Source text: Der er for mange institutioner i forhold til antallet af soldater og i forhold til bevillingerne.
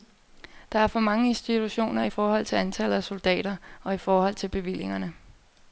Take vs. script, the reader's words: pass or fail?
pass